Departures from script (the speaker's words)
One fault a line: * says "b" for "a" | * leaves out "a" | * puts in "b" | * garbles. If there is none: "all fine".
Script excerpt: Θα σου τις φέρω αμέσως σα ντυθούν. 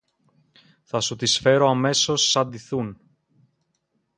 all fine